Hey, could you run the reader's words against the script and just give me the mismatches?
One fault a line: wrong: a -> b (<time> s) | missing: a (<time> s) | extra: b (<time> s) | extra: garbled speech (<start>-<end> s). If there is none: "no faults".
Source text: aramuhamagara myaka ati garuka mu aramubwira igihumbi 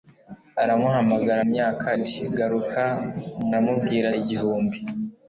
no faults